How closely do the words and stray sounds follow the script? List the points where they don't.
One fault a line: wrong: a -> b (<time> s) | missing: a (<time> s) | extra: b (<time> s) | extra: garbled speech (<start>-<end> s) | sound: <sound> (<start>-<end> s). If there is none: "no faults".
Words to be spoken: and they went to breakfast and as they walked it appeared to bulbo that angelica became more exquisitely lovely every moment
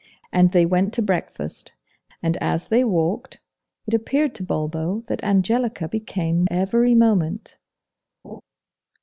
missing: more exquisitely lovely (6.5 s)
sound: laugh (8.2-8.4 s)